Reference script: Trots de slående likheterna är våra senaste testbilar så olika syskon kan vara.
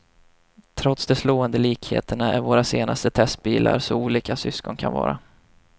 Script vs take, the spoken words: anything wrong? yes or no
no